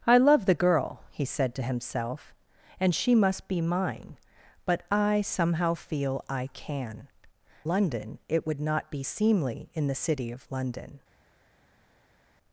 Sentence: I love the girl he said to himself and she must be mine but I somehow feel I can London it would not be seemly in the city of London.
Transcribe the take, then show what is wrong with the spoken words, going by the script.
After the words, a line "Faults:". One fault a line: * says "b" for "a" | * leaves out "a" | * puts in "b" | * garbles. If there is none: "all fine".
I love the girl he said to himself and she must be mine but I somehow feel I can London it would not be seemly in the city of London.
Faults:
all fine